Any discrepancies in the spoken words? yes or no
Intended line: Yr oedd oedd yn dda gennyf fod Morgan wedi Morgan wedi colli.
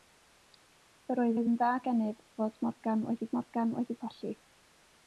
no